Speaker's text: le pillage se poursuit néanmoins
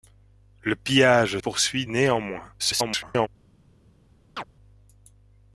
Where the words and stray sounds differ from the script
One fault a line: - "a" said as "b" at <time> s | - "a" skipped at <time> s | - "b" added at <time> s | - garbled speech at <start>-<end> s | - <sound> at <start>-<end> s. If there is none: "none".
- "se" skipped at 1.4 s
- garbled speech at 2.6-3.3 s
- chirp at 4.4-4.4 s